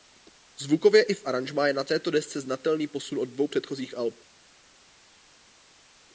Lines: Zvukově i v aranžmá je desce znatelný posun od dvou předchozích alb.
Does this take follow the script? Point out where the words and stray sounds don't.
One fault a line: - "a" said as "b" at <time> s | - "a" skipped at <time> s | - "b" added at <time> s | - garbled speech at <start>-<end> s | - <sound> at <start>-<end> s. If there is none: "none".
- "na této" added at 1.7 s